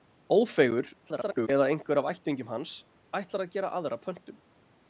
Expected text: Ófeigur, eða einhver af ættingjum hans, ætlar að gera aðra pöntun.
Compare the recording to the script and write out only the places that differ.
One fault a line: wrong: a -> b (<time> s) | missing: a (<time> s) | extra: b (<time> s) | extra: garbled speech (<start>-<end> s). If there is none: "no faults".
extra: garbled speech (1.0-1.5 s)